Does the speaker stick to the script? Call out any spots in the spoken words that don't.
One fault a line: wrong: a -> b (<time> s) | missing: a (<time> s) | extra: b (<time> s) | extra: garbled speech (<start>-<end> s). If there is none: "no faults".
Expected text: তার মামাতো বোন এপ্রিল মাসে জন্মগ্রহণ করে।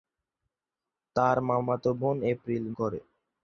missing: মাসে জন্মগ্রহণ (2.6 s)